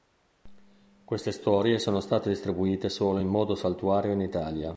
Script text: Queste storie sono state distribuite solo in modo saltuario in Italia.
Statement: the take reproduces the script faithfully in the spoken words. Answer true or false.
true